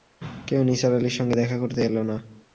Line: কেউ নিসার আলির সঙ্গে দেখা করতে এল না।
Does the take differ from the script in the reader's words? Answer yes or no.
no